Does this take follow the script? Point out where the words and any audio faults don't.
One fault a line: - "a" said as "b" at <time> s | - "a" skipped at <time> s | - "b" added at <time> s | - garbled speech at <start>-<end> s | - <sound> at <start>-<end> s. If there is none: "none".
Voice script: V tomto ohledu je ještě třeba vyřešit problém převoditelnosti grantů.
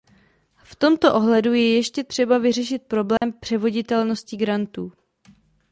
- dropout at 3.2-3.2 s